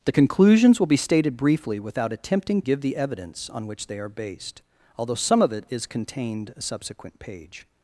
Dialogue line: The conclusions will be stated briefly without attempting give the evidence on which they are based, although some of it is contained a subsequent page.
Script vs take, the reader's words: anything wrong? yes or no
no